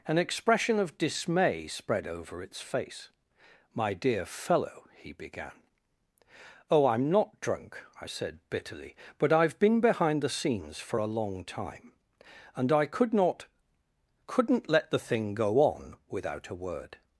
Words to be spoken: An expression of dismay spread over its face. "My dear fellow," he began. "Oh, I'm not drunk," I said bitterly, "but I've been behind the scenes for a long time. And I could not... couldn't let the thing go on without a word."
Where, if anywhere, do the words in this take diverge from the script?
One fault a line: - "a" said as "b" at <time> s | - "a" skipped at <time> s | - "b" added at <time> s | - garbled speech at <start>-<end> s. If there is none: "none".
none